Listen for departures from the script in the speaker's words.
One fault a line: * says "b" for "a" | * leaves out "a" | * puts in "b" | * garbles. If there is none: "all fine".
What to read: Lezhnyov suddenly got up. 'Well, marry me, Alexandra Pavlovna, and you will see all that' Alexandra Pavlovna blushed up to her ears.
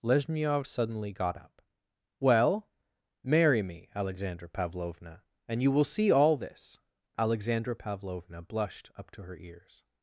* says "this" for "that"